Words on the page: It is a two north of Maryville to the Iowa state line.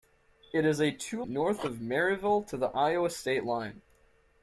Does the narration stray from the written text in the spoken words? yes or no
no